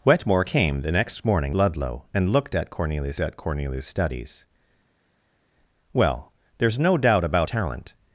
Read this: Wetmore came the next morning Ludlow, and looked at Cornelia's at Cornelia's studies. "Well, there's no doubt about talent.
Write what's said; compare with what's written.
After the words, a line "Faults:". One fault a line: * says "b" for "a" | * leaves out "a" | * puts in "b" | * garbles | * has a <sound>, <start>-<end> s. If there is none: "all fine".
Wetmore came the next morning Ludlow, and looked at Cornelia's at Cornelia's studies. "Well, there's no doubt about talent.
Faults:
all fine